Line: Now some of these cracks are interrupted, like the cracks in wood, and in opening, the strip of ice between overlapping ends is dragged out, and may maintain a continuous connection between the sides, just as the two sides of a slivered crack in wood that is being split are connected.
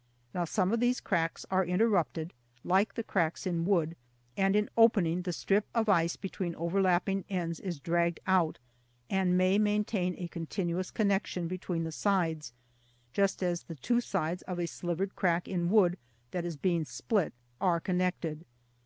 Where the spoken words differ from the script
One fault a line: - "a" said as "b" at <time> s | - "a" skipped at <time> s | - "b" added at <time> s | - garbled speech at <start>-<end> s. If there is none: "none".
none